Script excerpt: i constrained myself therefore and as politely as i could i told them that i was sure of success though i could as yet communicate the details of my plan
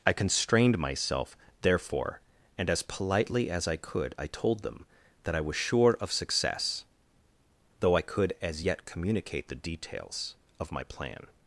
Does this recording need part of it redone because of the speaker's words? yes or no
no